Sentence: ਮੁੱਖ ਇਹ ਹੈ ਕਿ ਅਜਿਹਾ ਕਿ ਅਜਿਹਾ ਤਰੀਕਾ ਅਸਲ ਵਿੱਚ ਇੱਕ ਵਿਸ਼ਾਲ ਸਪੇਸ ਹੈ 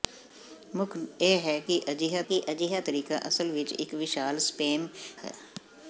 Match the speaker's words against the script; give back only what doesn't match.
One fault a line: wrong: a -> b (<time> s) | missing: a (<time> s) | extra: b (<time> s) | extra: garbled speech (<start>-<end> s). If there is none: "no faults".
no faults